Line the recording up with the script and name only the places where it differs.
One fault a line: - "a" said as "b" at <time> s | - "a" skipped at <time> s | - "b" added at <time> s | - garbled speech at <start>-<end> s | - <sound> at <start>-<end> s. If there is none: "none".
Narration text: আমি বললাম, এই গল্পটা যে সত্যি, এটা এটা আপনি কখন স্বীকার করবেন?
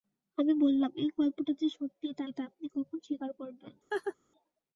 - laugh at 3.9-4.2 s